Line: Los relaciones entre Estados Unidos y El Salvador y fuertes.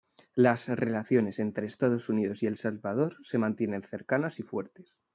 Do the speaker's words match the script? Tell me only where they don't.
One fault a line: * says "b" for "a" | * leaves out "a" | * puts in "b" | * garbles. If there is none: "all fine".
* says "Las" for "Los"
* puts in "se mantienen cercanas"